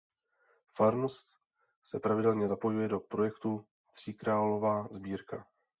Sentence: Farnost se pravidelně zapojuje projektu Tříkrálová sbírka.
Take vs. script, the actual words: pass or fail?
fail